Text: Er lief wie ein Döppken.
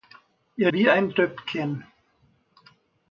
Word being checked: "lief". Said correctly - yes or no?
no